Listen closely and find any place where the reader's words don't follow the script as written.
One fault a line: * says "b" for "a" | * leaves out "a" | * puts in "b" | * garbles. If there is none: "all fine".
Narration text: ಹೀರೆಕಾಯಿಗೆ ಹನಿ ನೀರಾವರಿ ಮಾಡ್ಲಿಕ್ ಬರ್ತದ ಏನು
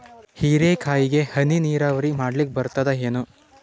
all fine